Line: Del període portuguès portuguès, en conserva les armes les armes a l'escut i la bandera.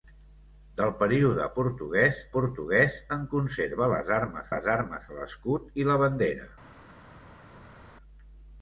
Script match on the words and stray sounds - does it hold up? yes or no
yes